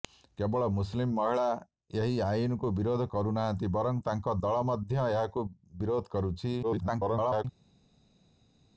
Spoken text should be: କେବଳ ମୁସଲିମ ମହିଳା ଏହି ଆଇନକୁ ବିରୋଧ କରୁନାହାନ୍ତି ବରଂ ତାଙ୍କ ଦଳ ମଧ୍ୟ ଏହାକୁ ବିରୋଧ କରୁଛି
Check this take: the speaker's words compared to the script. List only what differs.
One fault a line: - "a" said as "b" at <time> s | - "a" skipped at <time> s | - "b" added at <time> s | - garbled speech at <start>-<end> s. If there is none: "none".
- garbled speech at 6.6-7.4 s